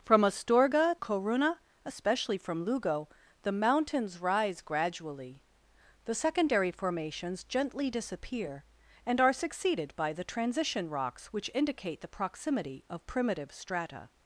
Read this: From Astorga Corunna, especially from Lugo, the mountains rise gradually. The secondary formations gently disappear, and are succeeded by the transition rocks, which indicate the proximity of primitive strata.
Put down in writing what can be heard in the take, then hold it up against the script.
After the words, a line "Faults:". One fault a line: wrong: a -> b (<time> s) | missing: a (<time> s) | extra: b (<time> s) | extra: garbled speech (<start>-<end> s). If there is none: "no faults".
From Astorga Corunna, especially from Lugo, the mountains rise gradually. The secondary formations gently disappear, and are succeeded by the transition rocks, which indicate the proximity of primitive strata.
Faults:
no faults